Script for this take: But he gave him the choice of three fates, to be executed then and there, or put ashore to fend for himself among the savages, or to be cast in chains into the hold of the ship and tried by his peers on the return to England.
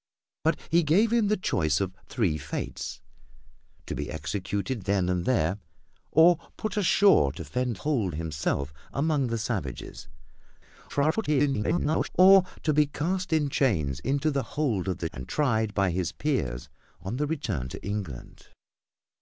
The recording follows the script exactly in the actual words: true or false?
false